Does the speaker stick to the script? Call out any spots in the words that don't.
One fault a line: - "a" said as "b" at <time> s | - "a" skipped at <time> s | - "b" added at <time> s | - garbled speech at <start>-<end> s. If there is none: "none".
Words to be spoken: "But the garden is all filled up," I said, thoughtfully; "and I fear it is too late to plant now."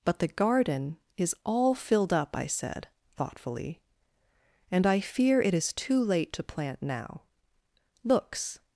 - "Looks" added at 8.0 s